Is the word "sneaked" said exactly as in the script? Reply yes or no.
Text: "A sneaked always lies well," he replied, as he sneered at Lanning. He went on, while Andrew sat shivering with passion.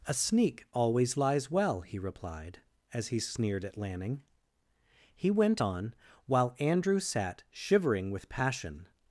no